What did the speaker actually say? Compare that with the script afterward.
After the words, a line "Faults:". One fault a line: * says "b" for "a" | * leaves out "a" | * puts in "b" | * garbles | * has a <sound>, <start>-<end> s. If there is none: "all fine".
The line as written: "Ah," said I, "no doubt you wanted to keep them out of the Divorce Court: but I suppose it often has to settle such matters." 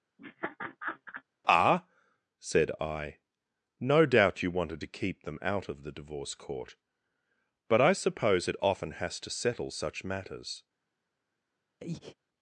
"Ah," said I, "no doubt you wanted to keep them out of the Divorce Court: but I suppose it often has to settle such matters."
Faults:
* has a laugh, 0.2-1.2 s
* has a breath, 11.8-12.2 s